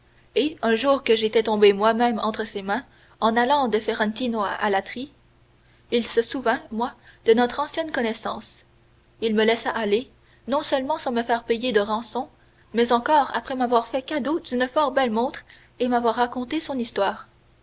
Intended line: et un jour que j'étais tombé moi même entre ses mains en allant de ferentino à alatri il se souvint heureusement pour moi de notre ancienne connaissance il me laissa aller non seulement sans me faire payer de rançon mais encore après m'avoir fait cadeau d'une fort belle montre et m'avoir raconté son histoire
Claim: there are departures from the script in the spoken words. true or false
true